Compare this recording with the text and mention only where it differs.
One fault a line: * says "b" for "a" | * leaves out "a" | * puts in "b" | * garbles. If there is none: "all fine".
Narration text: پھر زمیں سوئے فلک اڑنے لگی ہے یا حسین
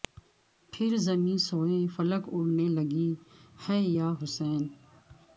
all fine